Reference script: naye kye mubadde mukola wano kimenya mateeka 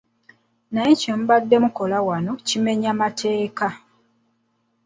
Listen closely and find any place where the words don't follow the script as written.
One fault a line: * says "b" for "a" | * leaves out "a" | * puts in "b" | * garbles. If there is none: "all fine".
all fine